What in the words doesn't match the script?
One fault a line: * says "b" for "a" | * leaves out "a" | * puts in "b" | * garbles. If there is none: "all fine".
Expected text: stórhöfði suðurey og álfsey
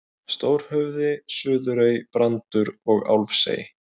* puts in "brandur"